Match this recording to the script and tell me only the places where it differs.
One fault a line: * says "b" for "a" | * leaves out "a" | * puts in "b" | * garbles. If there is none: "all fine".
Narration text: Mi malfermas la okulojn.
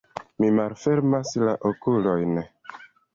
all fine